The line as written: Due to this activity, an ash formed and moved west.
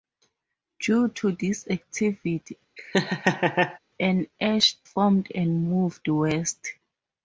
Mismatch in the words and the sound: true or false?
true